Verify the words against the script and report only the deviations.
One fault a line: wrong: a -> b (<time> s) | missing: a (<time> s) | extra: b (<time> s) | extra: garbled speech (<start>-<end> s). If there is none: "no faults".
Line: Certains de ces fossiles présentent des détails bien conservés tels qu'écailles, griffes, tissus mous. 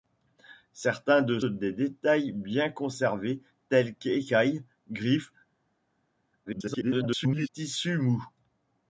missing: ces fossiles présentent (1.4 s)
extra: garbled speech (6.5-7.5 s)